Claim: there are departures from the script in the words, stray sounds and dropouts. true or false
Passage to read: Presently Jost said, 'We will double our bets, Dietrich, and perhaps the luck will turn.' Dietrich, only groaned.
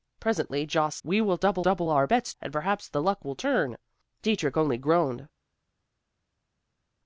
true